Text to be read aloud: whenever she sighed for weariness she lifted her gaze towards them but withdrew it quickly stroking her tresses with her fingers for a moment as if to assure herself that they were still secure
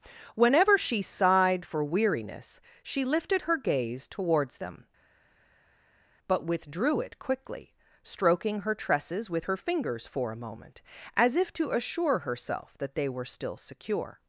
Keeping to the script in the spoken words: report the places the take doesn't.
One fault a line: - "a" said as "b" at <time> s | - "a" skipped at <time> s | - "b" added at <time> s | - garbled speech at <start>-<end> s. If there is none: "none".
none